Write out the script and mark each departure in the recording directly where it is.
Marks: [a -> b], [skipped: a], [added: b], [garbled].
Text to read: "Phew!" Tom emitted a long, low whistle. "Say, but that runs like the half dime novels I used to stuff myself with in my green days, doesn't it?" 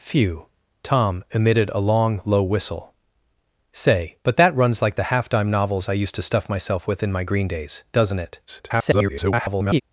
"Phew!" Tom emitted a long, low whistle. "Say, but that runs like the half dime novels I used to stuff myself with in my green days, doesn't it?" [garbled]